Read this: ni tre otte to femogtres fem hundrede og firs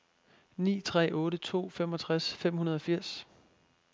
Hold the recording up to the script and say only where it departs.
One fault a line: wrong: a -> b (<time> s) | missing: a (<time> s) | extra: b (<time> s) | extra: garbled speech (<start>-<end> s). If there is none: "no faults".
no faults